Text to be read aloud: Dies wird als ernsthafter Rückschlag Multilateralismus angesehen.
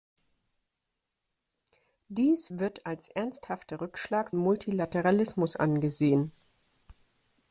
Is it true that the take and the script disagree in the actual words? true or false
false